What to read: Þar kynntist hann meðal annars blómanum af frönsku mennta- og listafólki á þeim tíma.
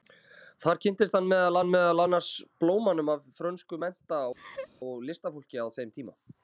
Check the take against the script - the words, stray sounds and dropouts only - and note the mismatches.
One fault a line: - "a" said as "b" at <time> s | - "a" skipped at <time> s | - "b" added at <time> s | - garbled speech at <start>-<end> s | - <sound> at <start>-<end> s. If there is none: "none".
- "hann meðal" added at 1.6 s
- laugh at 4.3-4.7 s